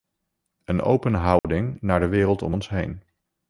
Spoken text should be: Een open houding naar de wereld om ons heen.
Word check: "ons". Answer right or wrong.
right